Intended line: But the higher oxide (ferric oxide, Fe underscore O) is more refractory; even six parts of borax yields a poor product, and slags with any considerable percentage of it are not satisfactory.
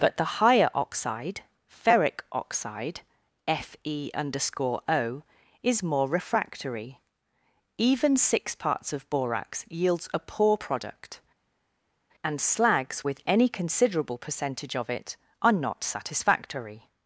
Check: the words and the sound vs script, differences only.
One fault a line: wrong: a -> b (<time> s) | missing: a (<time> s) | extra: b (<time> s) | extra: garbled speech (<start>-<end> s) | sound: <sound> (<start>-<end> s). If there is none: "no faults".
no faults